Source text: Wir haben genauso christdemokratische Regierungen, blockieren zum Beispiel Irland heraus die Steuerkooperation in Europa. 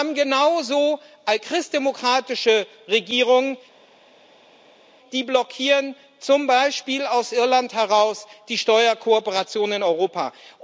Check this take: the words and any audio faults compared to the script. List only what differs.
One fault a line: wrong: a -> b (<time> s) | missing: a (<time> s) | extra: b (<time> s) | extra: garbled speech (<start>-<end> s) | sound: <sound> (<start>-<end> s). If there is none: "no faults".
extra: die (5.1 s)
extra: aus (7.1 s)